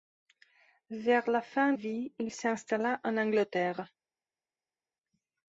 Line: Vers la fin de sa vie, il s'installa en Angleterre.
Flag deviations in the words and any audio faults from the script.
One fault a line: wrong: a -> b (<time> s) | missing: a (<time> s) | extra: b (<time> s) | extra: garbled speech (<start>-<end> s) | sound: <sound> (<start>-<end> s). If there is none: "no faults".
missing: de sa (1.7 s)